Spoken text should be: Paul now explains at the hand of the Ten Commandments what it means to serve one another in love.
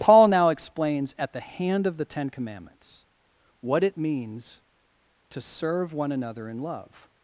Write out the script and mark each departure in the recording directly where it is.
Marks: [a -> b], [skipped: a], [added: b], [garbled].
Paul now explains at the hand of the Ten Commandments what it means to serve one another in love.